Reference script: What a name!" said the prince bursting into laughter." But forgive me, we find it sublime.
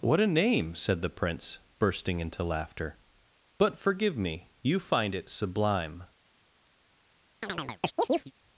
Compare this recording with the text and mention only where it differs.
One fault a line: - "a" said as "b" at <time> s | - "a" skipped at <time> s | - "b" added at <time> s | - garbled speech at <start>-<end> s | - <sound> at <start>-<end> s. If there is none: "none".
- "we" said as "you" at 4.6 s
- chirp at 7.4-8.3 s